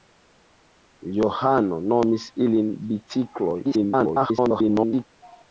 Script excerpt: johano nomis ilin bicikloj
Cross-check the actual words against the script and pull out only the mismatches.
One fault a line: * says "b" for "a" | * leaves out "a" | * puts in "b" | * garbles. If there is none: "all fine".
* garbles